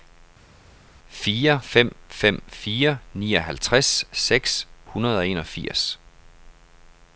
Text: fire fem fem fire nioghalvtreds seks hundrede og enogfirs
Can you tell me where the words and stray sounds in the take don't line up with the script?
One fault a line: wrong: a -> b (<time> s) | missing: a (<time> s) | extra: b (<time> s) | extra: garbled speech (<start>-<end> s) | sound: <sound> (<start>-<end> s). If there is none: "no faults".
no faults